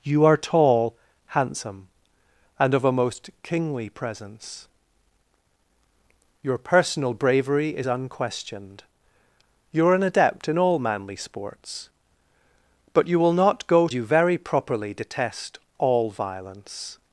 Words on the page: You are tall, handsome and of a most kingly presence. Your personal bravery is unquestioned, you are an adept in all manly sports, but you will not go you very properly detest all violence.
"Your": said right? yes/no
yes